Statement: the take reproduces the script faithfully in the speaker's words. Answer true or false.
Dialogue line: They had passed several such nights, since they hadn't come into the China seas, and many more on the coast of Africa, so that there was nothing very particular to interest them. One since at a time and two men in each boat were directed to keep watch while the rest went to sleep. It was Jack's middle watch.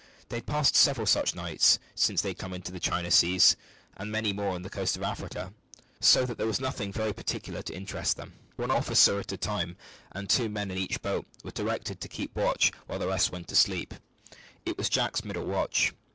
false